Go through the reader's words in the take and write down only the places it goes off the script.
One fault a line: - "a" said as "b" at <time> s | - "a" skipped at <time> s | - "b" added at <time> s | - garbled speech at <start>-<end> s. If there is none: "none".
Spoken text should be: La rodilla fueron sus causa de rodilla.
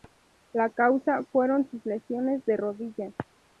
- "rodilla" said as "causa" at 0.7 s
- "causa" said as "lesiones" at 1.9 s